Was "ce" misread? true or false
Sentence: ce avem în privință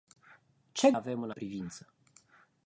false